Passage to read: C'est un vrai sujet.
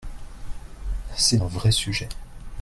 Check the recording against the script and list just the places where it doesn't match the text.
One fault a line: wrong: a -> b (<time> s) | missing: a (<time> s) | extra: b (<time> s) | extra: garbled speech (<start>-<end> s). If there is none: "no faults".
no faults